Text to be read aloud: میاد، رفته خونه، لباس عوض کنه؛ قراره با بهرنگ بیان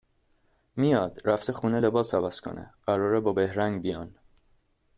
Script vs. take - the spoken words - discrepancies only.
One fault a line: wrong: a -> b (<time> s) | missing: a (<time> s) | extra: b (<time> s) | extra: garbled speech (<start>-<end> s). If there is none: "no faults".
no faults